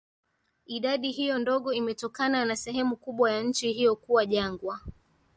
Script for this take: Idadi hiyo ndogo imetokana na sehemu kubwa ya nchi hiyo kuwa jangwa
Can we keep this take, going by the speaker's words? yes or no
yes